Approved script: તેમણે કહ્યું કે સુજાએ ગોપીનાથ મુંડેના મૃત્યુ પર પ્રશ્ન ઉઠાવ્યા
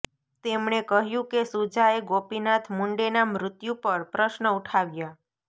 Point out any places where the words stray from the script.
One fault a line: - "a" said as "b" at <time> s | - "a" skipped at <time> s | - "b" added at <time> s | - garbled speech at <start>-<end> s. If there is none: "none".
none